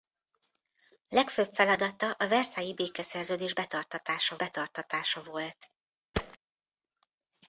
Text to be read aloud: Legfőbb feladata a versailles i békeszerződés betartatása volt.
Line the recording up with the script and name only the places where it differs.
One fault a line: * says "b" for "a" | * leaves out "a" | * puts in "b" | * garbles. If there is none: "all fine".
* puts in "betartatása"